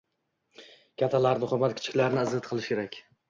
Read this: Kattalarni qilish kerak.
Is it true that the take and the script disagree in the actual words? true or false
true